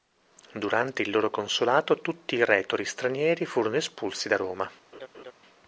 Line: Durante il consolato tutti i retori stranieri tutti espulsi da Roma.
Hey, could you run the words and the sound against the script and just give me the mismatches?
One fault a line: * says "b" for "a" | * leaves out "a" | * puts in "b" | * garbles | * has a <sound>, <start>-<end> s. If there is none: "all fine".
* puts in "loro"
* says "furono" for "tutti"
* has a laugh, 4.9-5.3 s